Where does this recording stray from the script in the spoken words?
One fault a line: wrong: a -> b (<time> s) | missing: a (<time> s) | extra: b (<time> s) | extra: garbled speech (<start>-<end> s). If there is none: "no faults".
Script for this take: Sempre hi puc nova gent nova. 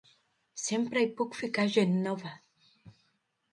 wrong: nova -> ficar (1.4 s)